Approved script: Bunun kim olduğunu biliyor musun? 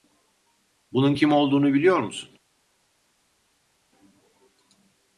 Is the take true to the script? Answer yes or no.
yes